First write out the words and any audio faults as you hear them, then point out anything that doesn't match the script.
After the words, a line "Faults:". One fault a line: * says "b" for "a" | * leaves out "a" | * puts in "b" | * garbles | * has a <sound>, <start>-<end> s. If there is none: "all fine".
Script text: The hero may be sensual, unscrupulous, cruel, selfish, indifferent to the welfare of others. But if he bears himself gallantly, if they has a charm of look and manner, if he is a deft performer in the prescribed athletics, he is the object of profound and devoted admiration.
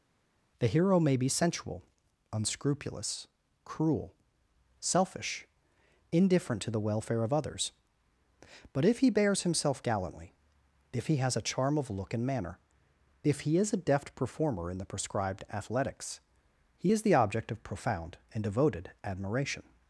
The hero may be sensual, unscrupulous, cruel, selfish, indifferent to the welfare of others. But if he bears himself gallantly, if he has a charm of look and manner, if he is a deft performer in the prescribed athletics, he is the object of profound and devoted admiration.
Faults:
* says "he" for "they"